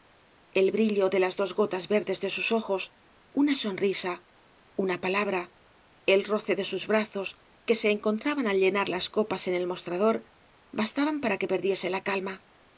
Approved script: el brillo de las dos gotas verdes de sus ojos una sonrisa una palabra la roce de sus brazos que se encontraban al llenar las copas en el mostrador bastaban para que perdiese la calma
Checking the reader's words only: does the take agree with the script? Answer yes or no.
no